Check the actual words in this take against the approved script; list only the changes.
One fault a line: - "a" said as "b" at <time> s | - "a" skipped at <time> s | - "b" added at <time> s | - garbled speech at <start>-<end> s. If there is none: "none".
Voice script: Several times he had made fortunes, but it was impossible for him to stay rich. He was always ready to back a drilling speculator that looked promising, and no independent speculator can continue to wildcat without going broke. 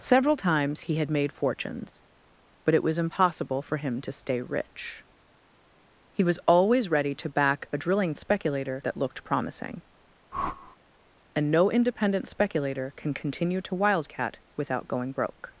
none